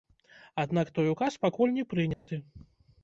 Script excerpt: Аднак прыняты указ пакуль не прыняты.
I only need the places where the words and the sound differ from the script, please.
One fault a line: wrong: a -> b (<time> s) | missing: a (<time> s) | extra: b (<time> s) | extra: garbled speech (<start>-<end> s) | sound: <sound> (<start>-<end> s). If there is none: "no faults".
wrong: прыняты -> той (0.9 s)
sound: dropout (2.1-2.3 s)